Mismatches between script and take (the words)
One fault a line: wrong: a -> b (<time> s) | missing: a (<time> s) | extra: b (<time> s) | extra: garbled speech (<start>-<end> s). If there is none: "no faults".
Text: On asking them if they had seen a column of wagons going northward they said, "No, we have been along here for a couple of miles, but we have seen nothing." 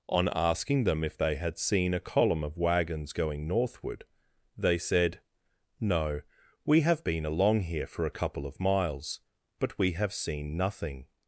no faults